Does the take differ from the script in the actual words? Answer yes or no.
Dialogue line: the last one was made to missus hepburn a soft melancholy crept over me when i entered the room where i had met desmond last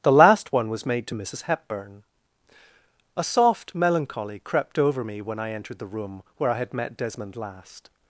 no